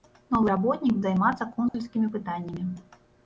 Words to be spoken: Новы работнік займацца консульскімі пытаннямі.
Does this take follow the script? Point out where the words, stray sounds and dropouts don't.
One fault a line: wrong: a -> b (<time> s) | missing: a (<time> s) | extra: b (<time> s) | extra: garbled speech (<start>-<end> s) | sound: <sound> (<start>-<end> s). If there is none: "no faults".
sound: dropout (1.7-1.7 s)